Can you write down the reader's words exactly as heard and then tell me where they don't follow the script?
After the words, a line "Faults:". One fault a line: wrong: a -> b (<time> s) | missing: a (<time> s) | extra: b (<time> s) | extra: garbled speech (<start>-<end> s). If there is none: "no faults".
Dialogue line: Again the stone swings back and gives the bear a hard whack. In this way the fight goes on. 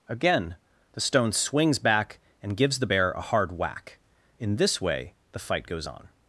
Again the stone swings back and gives the bear a hard whack. In this way the fight goes on.
Faults:
no faults